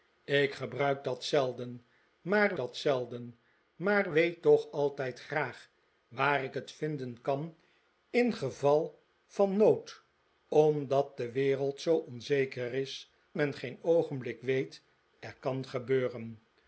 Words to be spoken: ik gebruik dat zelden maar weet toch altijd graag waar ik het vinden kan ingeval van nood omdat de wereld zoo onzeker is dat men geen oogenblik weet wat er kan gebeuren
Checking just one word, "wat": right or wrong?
wrong